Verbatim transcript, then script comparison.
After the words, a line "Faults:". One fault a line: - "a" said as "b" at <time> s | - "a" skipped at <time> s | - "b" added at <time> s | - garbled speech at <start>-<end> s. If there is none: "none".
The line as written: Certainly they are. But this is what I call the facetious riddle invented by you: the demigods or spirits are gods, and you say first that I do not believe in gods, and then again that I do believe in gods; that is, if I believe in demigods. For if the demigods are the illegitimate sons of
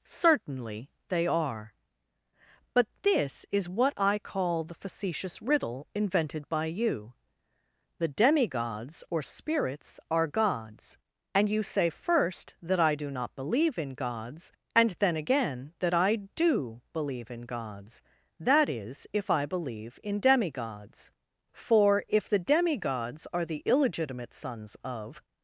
Certainly they are. But this is what I call the facetious riddle invented by you: the demigods or spirits are gods, and you say first that I do not believe in gods, and then again that I do believe in gods; that is, if I believe in demigods. For if the demigods are the illegitimate sons of
Faults:
none